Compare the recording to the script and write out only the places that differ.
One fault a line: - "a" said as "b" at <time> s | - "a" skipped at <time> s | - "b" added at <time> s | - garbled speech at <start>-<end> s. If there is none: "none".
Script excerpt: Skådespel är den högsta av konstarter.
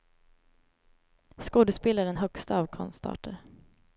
none